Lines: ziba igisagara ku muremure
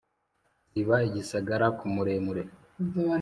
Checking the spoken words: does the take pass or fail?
pass